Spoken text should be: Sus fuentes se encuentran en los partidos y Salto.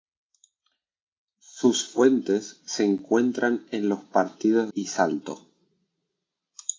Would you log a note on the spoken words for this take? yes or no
no